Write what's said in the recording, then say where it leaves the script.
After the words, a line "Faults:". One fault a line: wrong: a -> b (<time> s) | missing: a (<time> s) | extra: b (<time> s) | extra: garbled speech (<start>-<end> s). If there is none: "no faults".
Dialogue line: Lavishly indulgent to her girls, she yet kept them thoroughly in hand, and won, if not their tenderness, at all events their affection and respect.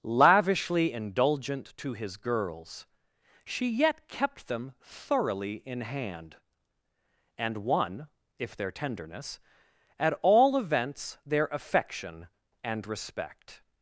Lavishly indulgent to his girls, she yet kept them thoroughly in hand, and won, if their tenderness, at all events their affection and respect.
Faults:
wrong: her -> his (1.9 s)
missing: not (8.6 s)